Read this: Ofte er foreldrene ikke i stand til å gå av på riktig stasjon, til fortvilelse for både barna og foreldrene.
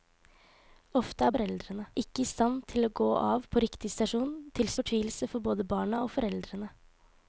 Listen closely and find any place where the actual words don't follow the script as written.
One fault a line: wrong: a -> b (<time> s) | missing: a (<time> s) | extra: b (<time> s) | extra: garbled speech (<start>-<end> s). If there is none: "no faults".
no faults